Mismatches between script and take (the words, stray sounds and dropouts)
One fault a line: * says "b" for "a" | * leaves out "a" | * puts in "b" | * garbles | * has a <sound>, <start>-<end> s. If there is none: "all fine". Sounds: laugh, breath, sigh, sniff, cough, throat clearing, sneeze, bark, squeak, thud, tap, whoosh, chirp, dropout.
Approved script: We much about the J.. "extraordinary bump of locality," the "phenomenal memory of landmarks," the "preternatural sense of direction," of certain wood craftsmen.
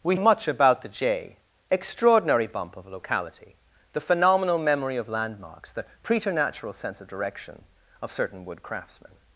all fine